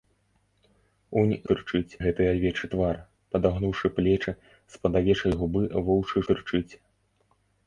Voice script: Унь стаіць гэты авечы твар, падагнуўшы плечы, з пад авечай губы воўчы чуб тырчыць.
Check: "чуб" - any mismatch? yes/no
yes